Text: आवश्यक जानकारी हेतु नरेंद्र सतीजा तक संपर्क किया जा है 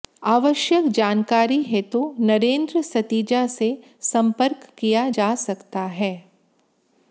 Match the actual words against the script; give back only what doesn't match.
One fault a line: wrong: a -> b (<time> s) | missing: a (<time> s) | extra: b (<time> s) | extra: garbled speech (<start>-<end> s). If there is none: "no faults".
wrong: तक -> से (3.5 s)
extra: सकता (5.3 s)